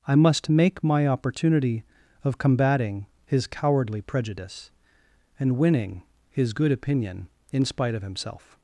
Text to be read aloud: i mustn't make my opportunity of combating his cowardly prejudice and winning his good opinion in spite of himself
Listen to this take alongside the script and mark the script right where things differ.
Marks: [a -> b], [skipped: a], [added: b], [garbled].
i [mustn't -> must] make my opportunity of combating his cowardly prejudice and winning his good opinion in spite of himself